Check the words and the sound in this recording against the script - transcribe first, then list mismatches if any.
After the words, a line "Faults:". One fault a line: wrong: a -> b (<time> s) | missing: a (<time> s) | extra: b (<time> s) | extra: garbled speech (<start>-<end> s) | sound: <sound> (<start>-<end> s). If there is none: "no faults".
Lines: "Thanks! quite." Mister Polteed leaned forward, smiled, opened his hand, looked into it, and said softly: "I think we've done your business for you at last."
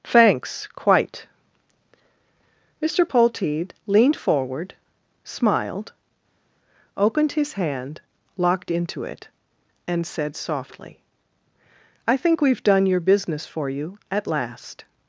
"Thanks! quite." Mister Polteed leaned forward, smiled, opened his hand, locked into it, and said softly: "I think we've done your business for you at last."
Faults:
wrong: looked -> locked (8.4 s)